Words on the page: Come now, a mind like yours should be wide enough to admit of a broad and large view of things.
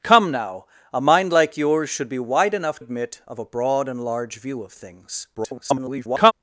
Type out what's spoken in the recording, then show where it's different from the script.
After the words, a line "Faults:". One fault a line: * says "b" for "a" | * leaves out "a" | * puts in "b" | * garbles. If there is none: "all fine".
Come now, a mind like yours should be wide enough admit of a broad and large view of things. [garbled]
Faults:
* leaves out "to"
* garbles